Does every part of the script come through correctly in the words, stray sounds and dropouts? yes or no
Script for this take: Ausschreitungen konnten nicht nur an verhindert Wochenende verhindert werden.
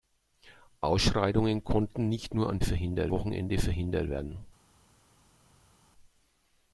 yes